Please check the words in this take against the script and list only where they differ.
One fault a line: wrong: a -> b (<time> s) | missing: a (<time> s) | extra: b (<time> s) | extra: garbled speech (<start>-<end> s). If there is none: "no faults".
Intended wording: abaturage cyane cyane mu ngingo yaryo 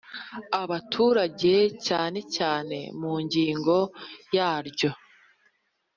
no faults